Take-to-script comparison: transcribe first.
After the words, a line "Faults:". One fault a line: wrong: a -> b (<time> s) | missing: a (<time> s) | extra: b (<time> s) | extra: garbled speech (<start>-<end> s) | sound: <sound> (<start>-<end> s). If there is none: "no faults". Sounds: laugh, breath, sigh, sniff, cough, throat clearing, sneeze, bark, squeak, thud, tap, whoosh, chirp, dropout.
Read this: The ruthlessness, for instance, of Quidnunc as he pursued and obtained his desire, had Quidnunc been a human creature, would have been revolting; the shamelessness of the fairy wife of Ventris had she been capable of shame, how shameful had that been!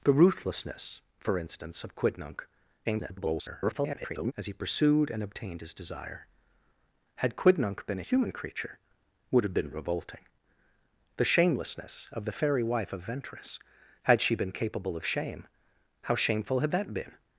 The ruthlessness, for instance, of Quidnunc [garbled] as he pursued and obtained his desire, had Quidnunc been a human creature, would have been revolting; the shamelessness of the fairy wife of Ventris had she been capable of shame, how shameful had that been!
Faults:
extra: garbled speech (2.8-4.3 s)